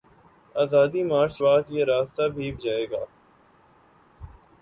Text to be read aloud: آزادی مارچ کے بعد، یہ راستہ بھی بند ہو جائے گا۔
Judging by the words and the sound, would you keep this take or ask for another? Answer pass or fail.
fail